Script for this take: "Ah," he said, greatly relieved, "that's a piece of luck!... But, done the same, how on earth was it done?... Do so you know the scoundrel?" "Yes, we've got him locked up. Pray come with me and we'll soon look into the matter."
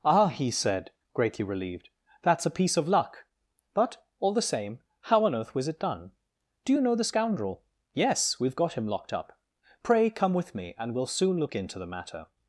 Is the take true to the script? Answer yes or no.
no